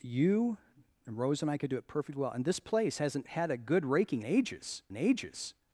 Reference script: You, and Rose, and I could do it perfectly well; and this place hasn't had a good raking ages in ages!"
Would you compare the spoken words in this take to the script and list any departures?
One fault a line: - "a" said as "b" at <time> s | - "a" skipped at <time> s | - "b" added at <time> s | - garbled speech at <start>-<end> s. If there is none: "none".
none